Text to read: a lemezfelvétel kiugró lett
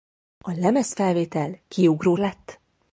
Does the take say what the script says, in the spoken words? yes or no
yes